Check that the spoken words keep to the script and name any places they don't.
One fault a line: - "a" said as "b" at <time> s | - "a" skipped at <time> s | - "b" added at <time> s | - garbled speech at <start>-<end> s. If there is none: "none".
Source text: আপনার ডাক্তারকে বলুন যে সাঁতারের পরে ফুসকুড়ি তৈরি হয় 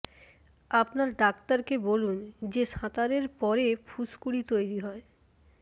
none